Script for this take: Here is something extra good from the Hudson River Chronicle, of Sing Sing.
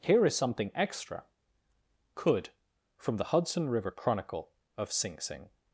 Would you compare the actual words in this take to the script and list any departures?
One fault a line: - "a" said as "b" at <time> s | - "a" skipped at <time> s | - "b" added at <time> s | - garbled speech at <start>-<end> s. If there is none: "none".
- "good" said as "could" at 2.1 s